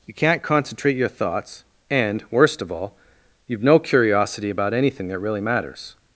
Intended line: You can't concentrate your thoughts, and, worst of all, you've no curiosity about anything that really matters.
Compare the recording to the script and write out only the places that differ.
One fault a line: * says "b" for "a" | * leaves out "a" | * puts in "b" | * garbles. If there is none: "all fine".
all fine